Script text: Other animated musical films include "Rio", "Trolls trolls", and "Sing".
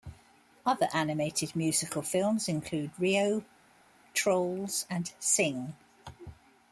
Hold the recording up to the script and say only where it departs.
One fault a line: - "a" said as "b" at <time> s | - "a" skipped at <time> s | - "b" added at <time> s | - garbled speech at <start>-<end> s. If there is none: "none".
- "trolls" skipped at 4.9 s